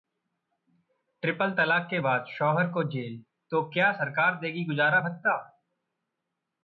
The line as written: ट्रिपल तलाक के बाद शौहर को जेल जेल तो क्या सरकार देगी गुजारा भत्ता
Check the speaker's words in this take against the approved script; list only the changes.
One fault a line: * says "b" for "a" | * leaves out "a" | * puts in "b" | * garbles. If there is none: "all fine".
* leaves out "जेल"